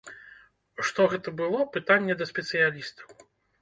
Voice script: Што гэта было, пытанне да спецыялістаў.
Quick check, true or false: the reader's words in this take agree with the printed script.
true